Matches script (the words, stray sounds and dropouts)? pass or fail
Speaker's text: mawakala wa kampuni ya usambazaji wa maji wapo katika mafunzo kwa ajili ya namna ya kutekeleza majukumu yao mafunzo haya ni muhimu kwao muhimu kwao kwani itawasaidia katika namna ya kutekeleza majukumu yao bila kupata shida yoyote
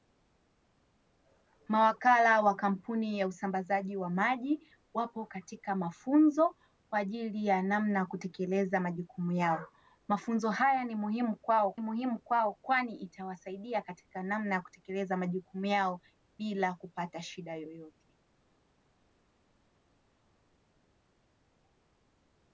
pass